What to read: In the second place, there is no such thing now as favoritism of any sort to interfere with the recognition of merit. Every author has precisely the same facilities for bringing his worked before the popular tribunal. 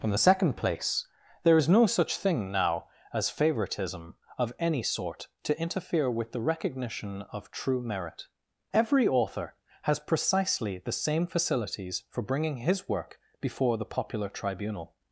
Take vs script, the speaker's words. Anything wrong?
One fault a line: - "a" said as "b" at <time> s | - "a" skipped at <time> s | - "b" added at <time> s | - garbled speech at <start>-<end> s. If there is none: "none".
- "true" added at 7.5 s
- "worked" said as "work" at 12.9 s